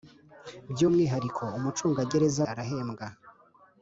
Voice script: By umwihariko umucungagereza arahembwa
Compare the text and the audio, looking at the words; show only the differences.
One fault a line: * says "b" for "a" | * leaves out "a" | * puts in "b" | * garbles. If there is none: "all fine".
all fine